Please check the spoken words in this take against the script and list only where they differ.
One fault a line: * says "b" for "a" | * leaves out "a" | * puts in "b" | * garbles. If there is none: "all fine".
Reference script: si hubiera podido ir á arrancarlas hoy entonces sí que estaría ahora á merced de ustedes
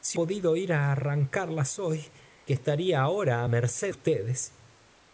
* leaves out "hubiera"
* leaves out "entonces sí"
* leaves out "de"